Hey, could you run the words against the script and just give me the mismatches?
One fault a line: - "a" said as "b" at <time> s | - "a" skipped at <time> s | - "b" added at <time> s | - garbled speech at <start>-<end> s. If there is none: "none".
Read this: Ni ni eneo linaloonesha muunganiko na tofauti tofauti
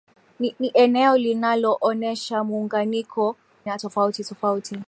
none